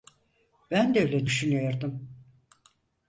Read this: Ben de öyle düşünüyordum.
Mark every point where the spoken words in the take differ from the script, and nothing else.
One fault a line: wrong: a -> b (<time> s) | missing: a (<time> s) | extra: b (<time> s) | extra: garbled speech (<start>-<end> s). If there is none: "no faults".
no faults